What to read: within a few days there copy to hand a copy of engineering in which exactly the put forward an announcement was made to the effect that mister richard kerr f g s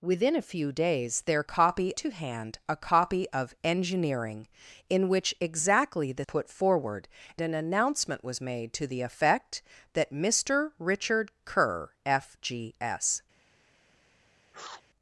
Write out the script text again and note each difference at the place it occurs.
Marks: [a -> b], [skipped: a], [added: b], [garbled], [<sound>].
within a few days there copy to hand a copy of engineering in which exactly the put forward an announcement was made to the effect that mister richard kerr f g s [sniff]